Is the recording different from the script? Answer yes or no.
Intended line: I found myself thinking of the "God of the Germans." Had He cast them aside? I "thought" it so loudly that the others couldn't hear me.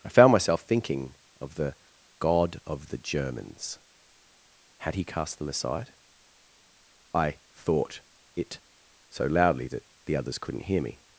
no